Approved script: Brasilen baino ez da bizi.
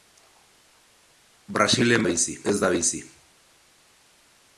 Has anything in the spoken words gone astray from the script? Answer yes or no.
yes